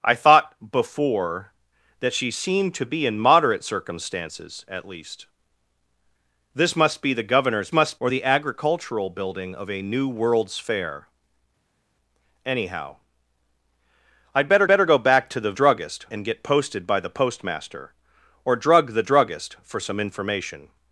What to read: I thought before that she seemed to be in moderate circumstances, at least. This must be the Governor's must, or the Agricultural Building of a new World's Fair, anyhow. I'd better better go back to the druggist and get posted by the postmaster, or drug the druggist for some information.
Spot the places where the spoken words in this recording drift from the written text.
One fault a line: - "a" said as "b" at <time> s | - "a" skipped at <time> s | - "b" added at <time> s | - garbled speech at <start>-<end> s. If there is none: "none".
none